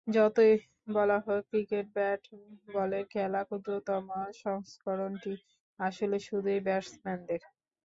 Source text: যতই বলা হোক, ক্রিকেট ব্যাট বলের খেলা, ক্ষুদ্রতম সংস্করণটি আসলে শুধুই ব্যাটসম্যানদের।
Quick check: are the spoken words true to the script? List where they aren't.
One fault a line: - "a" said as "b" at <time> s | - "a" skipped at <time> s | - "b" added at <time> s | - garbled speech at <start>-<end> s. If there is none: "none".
none